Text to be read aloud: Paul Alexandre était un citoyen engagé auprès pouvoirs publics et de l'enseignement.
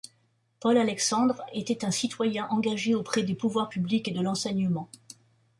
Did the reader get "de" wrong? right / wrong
right